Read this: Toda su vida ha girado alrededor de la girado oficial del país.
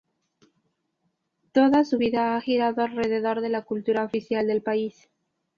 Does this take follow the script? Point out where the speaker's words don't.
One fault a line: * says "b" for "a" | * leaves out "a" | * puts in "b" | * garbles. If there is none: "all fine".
* says "cultura" for "girado"